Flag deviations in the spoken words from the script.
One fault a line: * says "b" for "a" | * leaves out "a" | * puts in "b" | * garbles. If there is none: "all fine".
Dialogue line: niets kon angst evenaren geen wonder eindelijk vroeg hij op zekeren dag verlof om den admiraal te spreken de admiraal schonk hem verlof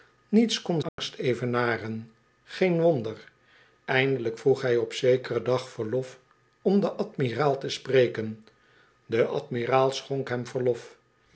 all fine